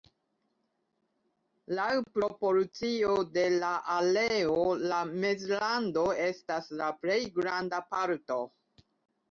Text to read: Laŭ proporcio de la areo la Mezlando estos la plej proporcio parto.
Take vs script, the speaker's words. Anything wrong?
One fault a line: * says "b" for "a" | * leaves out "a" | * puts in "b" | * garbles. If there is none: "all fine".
* says "estas" for "estos"
* says "granda" for "proporcio"